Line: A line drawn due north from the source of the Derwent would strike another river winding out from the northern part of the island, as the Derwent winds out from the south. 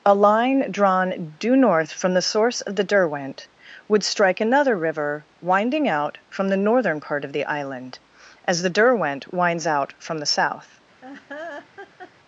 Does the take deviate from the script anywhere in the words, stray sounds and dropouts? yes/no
yes